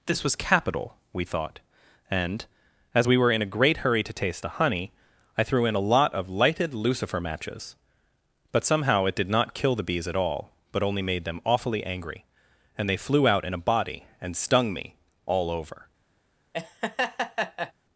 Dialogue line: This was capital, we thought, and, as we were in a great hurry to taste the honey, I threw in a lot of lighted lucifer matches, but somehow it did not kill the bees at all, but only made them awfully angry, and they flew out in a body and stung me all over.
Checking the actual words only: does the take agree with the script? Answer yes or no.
yes